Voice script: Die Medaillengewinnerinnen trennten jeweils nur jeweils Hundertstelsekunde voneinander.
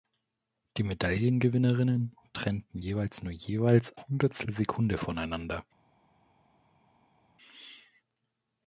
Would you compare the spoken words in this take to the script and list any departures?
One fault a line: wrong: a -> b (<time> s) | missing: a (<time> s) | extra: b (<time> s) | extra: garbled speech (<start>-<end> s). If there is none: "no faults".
no faults